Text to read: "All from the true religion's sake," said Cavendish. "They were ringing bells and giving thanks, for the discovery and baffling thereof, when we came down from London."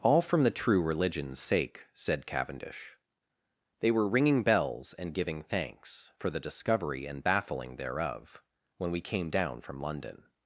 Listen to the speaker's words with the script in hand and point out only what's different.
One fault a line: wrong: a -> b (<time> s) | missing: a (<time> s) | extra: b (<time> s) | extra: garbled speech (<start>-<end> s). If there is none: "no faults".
no faults